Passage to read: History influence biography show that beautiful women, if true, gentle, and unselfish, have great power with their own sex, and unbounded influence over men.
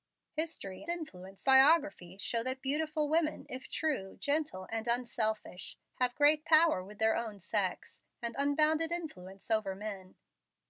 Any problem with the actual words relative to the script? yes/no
no